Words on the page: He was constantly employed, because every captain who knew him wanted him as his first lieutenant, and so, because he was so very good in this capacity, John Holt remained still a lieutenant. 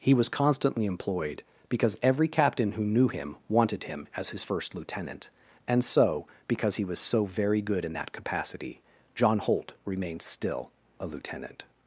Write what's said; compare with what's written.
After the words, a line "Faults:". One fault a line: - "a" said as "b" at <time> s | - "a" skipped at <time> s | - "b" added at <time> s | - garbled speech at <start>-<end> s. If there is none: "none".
He was constantly employed, because every captain who knew him wanted him as his first lieutenant, and so, because he was so very good in that capacity, John Holt remained still a lieutenant.
Faults:
- "this" said as "that" at 7.9 s